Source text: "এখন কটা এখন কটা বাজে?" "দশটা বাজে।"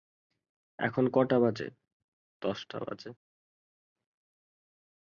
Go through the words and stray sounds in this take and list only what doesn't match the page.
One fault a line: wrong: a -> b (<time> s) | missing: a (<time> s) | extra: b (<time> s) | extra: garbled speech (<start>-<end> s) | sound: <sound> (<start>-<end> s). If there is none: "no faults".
missing: এখন কটা (1.4 s)